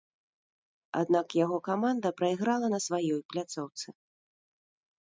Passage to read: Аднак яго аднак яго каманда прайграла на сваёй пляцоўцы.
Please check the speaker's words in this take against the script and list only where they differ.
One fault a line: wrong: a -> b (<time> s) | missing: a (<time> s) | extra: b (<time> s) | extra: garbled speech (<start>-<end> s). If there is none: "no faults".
missing: аднак яго (1.6 s)